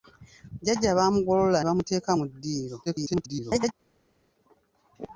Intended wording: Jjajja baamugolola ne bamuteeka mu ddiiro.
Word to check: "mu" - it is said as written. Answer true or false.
true